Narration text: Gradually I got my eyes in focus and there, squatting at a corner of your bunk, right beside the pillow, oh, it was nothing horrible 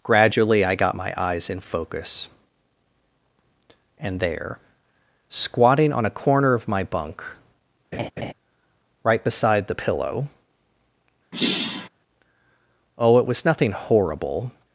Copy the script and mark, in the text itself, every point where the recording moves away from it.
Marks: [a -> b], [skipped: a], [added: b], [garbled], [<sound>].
Gradually I got my eyes in focus and there, squatting [at -> on] a corner of [your -> my] bunk, [laugh] right beside the pillow, [sigh] oh, it was nothing horrible